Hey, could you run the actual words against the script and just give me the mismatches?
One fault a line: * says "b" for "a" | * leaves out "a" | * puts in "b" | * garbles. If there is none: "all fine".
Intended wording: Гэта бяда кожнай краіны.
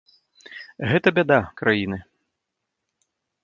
* leaves out "кожнай"